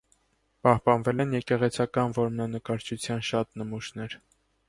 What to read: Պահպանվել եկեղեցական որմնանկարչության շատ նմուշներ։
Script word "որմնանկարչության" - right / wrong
right